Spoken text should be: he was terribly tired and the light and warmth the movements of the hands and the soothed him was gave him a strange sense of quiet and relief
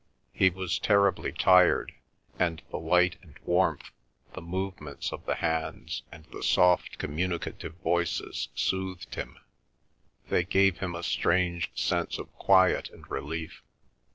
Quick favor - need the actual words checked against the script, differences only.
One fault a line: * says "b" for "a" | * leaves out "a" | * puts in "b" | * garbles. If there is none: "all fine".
* puts in "soft communicative voices"
* says "they" for "was"